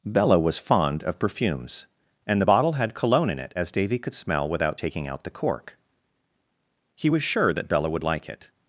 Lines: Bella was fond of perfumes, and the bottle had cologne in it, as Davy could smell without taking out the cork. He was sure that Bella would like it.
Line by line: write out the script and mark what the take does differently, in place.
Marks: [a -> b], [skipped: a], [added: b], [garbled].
Bella was fond of perfumes, and the bottle had cologne in it, as Davy could smell without taking out the cork. He was sure that Bella would like it.